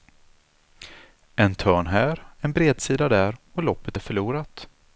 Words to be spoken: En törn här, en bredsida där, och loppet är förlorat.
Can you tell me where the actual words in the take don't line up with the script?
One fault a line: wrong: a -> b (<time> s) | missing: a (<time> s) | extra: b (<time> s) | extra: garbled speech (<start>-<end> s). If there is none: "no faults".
no faults